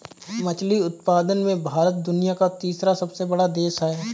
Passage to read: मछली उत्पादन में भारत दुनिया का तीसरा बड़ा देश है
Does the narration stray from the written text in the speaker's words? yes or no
yes